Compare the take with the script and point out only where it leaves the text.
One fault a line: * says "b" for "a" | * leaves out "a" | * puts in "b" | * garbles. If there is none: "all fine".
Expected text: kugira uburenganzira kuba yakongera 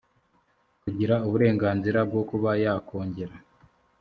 * puts in "bwo"